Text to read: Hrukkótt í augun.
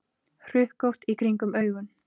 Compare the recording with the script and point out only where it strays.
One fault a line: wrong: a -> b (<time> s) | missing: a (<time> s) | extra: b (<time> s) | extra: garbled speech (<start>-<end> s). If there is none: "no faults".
extra: kringum (1.2 s)